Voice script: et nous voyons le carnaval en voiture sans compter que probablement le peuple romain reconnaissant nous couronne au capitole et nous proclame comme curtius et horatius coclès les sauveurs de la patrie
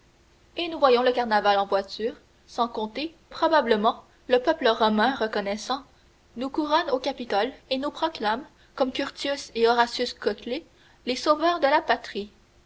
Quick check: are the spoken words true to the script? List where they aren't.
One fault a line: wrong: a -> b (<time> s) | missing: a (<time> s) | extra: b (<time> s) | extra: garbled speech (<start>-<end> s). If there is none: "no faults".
missing: que (3.1 s)